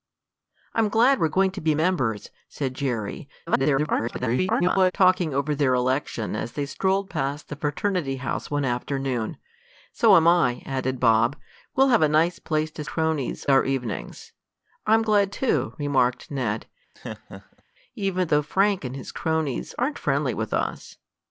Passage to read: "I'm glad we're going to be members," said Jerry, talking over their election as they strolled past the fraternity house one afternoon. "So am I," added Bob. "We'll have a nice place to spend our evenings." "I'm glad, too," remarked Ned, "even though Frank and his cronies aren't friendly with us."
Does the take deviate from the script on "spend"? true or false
true